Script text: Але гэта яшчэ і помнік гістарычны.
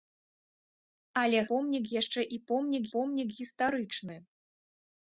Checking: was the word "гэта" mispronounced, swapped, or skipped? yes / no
yes